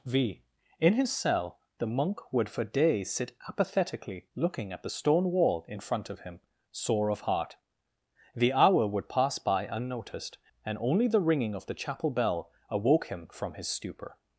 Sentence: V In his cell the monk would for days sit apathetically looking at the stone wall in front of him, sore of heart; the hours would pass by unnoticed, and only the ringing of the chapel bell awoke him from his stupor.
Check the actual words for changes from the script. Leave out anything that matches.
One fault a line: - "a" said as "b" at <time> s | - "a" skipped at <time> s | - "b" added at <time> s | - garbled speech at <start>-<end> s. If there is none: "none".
- "hours" said as "hour" at 8.5 s